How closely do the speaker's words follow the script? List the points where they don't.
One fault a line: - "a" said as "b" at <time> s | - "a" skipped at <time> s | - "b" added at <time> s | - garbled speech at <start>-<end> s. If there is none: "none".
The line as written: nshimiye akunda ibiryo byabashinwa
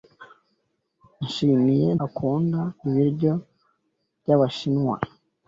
none